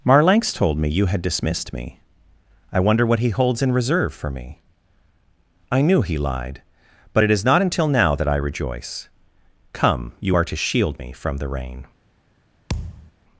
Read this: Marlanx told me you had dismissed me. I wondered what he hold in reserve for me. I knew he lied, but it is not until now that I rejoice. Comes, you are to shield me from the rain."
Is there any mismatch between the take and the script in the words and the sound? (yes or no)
yes